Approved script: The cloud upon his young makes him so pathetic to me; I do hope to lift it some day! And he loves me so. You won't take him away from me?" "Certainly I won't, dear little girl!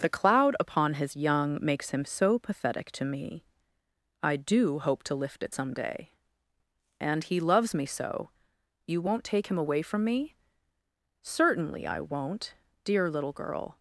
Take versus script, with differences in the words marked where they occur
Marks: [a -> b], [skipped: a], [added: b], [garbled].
The cloud upon his young makes him so pathetic to me; I do hope to lift it some day! And he loves me so. You won't take him away from me?" "Certainly I won't, dear little girl!